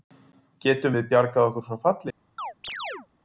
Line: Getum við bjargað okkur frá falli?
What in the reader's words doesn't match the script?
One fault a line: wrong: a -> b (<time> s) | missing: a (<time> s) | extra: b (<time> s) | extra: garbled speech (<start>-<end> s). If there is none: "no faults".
no faults